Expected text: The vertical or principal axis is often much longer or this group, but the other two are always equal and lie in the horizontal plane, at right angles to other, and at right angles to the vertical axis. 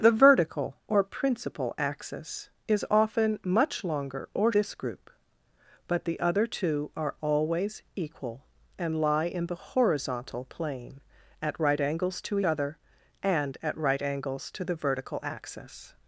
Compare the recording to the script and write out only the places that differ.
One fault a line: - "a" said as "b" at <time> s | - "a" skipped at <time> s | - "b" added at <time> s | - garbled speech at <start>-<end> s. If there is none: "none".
none